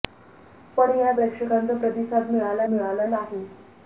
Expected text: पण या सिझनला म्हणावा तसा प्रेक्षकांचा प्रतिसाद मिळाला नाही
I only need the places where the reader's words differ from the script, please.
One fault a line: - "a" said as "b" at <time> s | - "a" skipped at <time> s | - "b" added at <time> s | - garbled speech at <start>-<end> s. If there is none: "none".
- "सिझनला म्हणावा तसा" skipped at 1.1 s
- "मिळाला" added at 2.7 s